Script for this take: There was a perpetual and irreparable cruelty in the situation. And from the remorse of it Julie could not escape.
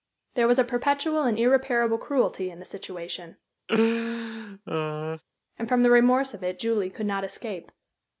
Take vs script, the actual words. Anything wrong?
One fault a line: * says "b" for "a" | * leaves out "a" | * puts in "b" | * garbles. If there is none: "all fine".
all fine